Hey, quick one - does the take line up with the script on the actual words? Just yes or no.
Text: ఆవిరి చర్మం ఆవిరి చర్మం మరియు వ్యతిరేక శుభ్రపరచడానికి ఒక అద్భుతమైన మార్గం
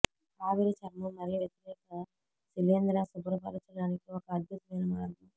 no